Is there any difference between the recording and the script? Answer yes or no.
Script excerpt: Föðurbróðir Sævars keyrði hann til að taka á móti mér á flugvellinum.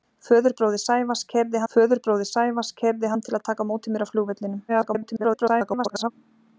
yes